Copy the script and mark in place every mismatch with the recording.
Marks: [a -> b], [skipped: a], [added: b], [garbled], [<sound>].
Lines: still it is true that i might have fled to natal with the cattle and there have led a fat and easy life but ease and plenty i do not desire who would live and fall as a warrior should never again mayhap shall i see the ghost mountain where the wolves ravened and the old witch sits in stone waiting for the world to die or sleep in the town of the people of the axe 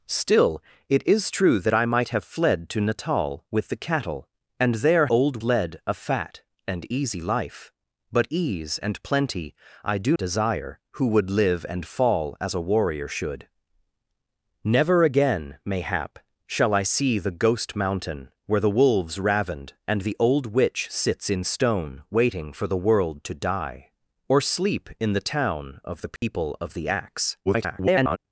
still it is true that i might have fled to natal with the cattle and there [have -> old] led a fat and easy life but ease and plenty i do [skipped: not] desire who would live and fall as a warrior should never again mayhap shall i see the ghost mountain where the wolves ravened and the old witch sits in stone waiting for the world to die or sleep in the town of the people [dropout] of the axe [garbled]